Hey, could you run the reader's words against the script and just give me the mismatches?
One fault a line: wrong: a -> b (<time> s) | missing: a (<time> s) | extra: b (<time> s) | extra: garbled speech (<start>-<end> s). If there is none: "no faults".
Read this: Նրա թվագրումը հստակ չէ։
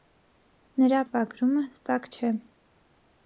no faults